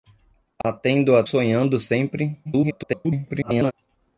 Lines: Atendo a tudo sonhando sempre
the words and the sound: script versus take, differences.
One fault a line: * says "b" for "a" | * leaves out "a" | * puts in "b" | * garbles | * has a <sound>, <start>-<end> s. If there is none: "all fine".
* has a dropout, 0.6-0.6 s
* leaves out "tudo"
* garbles